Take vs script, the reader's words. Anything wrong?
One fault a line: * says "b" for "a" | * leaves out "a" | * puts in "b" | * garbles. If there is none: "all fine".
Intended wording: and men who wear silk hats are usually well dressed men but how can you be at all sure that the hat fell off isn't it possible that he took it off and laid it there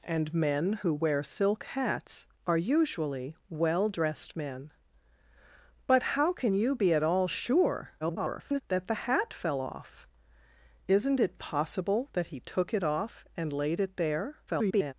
* garbles
* garbles